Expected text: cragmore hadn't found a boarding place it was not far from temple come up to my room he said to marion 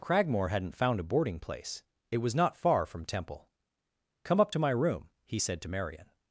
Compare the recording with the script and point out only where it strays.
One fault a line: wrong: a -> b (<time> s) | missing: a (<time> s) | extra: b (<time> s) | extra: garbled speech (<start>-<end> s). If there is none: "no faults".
no faults